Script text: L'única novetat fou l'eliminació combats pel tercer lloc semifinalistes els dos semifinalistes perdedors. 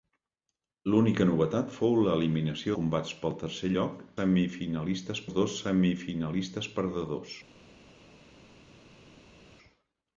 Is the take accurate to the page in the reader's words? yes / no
yes